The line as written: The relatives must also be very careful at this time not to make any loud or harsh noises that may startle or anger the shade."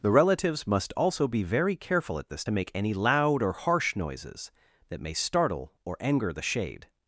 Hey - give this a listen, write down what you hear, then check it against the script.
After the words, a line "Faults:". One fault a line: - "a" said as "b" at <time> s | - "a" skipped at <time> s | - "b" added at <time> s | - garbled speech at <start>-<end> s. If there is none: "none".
The relatives must also be very careful at this to make any loud or harsh noises that may startle or anger the shade."
Faults:
- "time not" skipped at 2.5 s